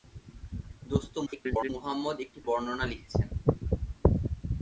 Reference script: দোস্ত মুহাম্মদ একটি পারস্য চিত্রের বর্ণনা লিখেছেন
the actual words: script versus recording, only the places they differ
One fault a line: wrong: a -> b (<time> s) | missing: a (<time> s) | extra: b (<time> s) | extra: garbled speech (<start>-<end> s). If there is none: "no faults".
extra: garbled speech (1.3-1.7 s)
missing: পারস্য চিত্রের (2.4 s)